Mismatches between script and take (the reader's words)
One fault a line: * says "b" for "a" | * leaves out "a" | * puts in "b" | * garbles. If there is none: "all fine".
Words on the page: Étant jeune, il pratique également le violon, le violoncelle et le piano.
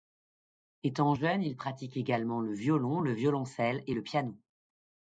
all fine